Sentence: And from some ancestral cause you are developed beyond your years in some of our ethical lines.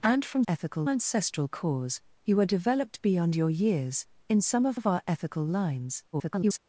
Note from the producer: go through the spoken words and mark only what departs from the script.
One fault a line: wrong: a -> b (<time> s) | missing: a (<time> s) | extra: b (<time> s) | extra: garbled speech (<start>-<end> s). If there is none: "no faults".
wrong: some -> ethical (0.5 s)
extra: of (4.7 s)
extra: garbled speech (6.1-6.6 s)